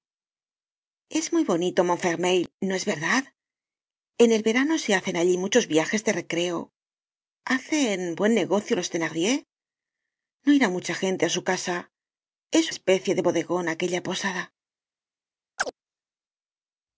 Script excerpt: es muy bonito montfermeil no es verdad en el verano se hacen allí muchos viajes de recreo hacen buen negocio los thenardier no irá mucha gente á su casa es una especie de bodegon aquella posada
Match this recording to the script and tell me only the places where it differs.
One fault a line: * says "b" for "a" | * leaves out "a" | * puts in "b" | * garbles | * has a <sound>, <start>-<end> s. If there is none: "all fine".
* leaves out "una"
* has a chirp, 15.6-15.7 s